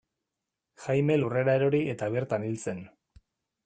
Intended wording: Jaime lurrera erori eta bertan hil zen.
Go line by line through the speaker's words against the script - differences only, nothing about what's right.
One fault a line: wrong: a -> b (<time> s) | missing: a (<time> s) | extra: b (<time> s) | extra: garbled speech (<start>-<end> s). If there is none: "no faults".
no faults